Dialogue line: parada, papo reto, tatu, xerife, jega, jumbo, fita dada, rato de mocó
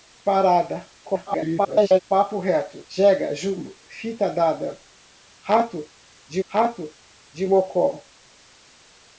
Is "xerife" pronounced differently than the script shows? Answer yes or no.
yes